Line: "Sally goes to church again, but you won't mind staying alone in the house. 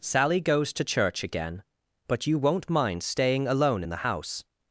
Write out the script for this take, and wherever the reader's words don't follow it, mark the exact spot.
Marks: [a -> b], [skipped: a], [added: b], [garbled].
"Sally goes to church again, but you won't mind staying alone in the house.